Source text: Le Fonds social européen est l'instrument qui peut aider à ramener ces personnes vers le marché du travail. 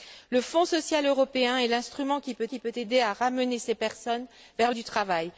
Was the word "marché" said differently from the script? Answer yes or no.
yes